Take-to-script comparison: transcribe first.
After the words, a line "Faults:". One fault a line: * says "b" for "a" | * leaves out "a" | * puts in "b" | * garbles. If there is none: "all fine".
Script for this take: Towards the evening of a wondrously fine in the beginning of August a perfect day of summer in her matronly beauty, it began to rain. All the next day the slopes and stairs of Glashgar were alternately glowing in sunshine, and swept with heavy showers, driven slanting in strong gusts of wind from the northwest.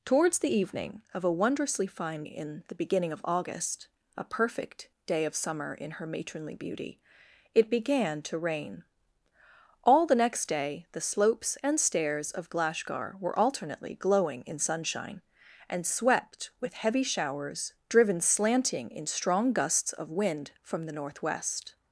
Towards the evening of a wondrously fine in the beginning of August a perfect day of summer in her matronly beauty, it began to rain. All the next day the slopes and stairs of Glashgar were alternately glowing in sunshine, and swept with heavy showers, driven slanting in strong gusts of wind from the northwest.
Faults:
all fine